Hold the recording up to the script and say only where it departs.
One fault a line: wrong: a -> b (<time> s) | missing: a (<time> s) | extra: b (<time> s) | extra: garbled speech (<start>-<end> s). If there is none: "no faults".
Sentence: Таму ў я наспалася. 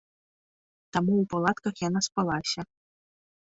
extra: палатках (1.4 s)